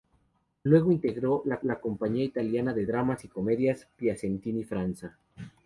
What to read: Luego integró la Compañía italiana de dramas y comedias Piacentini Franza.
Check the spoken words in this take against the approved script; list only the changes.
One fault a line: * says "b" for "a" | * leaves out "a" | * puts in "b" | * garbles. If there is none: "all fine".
* puts in "la"